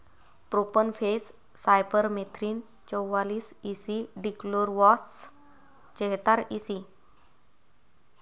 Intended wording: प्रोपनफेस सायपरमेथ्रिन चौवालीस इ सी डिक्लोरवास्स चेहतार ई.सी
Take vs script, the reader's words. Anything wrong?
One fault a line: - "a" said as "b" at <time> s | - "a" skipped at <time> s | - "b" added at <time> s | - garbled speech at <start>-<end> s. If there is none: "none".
none